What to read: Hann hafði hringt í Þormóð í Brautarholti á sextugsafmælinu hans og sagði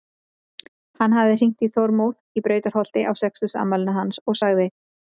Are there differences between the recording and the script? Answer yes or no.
no